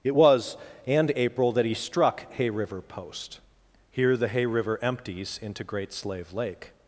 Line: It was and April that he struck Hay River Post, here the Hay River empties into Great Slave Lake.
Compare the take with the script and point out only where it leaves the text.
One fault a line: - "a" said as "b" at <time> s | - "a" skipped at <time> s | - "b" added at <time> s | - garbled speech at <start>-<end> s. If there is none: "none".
none